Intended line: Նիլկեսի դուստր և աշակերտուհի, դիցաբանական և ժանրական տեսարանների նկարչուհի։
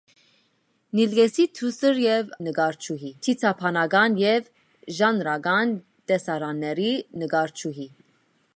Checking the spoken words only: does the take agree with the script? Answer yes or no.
no